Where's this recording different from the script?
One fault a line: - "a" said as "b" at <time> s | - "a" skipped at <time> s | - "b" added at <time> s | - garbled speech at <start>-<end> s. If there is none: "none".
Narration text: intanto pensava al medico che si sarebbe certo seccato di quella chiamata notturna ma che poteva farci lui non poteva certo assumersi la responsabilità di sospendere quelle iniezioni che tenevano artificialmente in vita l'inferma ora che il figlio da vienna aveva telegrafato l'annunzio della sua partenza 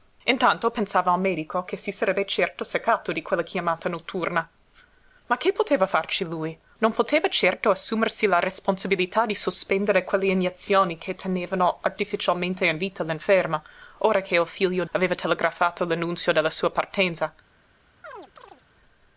- "da vienna" skipped at 14.8 s